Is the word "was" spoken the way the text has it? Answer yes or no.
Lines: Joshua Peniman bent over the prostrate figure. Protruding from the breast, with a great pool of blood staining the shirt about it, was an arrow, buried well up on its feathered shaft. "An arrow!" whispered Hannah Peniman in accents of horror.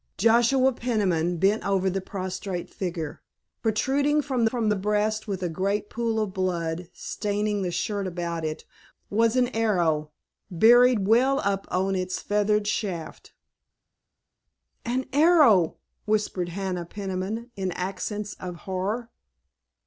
yes